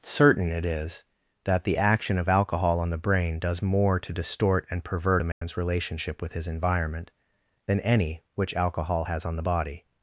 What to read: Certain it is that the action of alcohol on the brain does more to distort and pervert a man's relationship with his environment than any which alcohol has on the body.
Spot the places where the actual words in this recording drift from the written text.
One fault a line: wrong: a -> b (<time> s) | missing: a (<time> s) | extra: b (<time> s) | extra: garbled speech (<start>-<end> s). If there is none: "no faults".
no faults